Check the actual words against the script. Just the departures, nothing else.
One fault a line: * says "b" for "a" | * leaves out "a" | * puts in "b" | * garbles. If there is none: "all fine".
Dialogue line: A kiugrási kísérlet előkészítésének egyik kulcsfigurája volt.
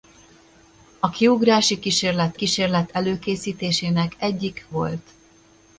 * puts in "kísérlet"
* leaves out "kulcsfigurája"